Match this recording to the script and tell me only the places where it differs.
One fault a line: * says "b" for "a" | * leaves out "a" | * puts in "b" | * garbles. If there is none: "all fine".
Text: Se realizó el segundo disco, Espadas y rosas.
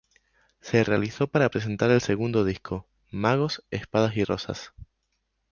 * puts in "para presentar"
* puts in "Magos"